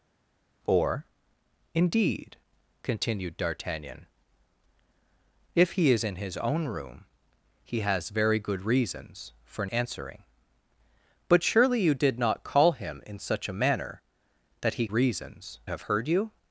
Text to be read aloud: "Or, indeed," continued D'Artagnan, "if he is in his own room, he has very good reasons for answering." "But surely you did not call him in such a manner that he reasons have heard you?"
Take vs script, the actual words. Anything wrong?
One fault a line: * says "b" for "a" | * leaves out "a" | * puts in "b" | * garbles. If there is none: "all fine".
all fine